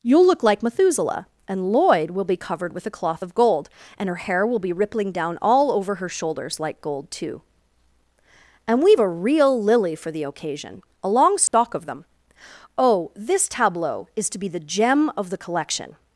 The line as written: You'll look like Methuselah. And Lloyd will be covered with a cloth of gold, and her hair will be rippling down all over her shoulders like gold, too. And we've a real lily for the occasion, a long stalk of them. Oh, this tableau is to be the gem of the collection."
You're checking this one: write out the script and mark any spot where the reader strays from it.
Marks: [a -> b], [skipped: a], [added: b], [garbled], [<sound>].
You'll look like Methuselah. And Lloyd will be covered with a cloth of gold, and her hair will be rippling down all over her shoulders like gold, too. And we've a real lily for the occasion, a long stalk [dropout] of them. Oh, this tableau is to be the gem of the collection."